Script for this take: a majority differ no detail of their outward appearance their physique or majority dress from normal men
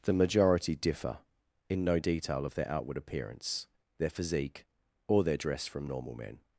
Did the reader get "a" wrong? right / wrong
wrong